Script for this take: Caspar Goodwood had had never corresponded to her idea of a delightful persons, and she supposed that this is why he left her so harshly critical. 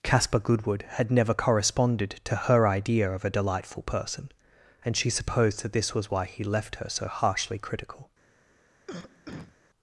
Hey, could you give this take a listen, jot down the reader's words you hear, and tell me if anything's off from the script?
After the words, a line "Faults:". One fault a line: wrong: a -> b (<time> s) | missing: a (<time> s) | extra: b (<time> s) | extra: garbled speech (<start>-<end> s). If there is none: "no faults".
Caspar Goodwood had never corresponded to her idea of a delightful person, and she supposed that this was why he left her so harshly critical.
Faults:
missing: had (1.1 s)
wrong: persons -> person (3.8 s)
wrong: is -> was (5.9 s)